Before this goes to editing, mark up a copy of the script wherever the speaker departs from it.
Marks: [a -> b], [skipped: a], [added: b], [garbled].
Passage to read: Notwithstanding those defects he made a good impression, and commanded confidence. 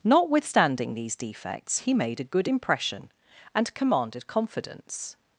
Notwithstanding [those -> these] defects he made a good impression, and commanded confidence.